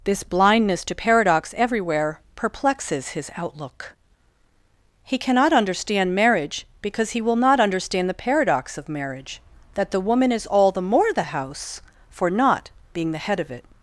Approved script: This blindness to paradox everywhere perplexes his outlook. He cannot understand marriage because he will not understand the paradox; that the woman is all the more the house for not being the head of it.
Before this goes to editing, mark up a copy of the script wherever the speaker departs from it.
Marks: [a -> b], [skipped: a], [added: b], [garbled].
This blindness to paradox everywhere perplexes his outlook. He cannot understand marriage because he will not understand the paradox; [added: of marriage] that the woman is all the more the house for not being the head of it.